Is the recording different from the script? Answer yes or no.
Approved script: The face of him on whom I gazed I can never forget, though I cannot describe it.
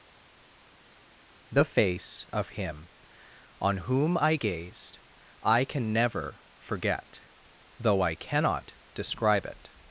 no